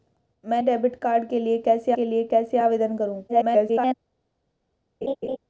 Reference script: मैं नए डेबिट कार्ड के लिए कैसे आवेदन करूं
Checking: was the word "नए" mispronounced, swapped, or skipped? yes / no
yes